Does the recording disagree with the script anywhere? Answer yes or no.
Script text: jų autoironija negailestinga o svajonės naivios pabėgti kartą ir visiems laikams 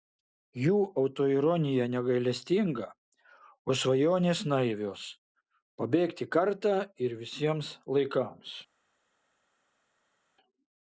no